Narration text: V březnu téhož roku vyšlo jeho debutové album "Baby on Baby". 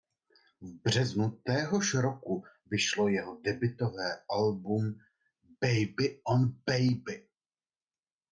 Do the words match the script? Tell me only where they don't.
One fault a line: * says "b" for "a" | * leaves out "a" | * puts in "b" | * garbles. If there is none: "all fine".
all fine